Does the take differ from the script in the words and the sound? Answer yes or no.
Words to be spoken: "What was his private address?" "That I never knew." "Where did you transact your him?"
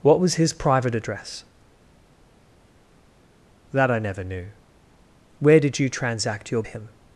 no